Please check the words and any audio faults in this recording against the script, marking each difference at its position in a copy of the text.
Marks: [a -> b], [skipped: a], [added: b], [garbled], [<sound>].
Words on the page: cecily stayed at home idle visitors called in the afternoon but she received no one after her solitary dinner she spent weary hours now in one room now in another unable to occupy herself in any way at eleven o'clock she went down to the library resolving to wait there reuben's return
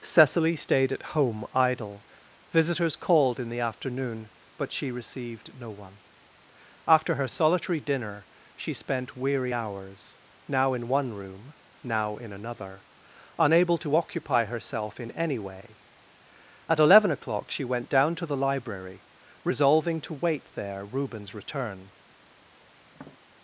cecily stayed at home idle visitors called in the afternoon but she received no one after her solitary dinner she spent weary hours now in one room now in another unable to occupy herself in any way at eleven o'clock she went down to the library resolving to wait there reuben's return [tap]